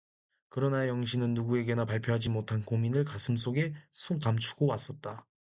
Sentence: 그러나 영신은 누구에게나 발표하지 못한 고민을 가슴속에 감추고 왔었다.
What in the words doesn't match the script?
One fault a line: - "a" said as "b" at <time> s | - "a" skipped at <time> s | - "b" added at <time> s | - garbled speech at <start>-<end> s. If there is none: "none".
none